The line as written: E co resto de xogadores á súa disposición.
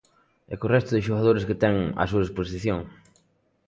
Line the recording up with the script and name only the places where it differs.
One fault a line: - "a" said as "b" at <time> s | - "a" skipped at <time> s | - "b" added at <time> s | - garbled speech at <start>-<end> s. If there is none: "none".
- "que ten" added at 1.5 s